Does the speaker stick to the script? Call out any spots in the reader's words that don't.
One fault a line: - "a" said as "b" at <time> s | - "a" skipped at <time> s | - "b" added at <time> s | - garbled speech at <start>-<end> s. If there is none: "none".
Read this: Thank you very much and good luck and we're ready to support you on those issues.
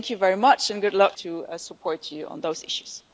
- "and we're ready" skipped at 1.1 s